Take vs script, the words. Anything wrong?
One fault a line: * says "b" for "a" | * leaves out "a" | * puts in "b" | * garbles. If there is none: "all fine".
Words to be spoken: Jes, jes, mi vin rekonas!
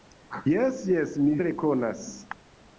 * leaves out "vin"